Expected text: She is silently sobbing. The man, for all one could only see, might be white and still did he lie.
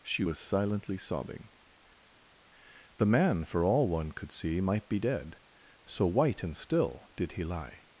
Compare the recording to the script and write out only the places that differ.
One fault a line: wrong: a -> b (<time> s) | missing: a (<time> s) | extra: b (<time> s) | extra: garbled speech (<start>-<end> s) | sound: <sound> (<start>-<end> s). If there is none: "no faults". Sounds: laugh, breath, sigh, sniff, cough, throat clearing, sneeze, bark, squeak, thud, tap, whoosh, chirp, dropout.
wrong: is -> was (0.2 s)
missing: only (4.3 s)
extra: dead so (5.0 s)